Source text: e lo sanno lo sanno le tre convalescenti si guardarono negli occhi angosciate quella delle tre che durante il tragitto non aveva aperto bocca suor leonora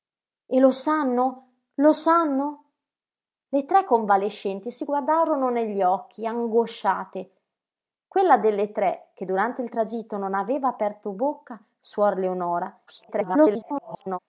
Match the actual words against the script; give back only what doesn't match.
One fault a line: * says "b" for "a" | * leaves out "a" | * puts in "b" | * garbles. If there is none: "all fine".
* garbles